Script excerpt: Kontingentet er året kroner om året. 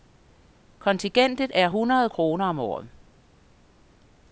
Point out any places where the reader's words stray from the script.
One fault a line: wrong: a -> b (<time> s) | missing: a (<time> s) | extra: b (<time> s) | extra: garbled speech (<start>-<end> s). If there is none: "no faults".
wrong: året -> hundrede (1.7 s)